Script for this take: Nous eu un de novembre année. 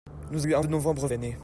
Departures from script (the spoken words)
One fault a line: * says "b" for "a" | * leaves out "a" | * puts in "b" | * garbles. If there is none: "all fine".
all fine